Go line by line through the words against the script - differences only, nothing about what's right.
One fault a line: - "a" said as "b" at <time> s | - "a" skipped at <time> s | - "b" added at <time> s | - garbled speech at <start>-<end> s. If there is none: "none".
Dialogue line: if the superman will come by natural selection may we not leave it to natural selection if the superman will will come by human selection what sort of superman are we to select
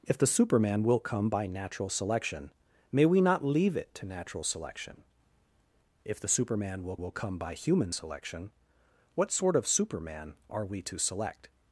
none